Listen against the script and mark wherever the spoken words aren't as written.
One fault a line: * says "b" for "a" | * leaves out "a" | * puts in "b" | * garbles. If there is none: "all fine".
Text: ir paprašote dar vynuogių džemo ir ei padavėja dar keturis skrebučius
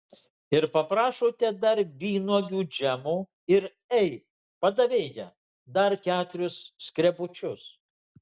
all fine